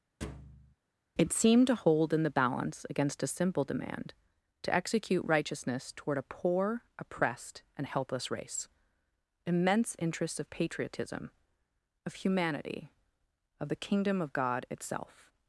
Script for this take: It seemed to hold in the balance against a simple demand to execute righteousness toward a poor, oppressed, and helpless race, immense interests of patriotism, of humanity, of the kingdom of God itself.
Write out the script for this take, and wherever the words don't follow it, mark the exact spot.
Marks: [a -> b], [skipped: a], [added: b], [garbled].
It seemed to hold in the balance against a simple demand to execute righteousness toward a poor, oppressed, and helpless race, immense interests of patriotism, of humanity, of the kingdom of God itself.